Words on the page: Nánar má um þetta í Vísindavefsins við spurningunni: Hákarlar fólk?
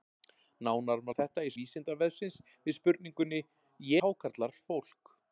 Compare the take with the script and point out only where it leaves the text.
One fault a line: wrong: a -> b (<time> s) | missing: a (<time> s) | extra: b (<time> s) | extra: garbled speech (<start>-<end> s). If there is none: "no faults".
no faults